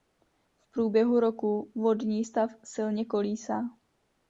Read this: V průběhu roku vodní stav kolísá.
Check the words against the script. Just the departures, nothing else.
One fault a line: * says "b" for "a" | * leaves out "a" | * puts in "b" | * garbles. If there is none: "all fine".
* puts in "silně"